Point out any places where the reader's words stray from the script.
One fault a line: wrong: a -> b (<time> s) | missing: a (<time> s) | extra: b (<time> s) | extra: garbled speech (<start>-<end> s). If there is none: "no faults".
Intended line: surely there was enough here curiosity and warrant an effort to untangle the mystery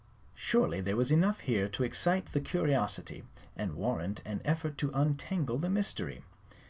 extra: to excite the (1.7 s)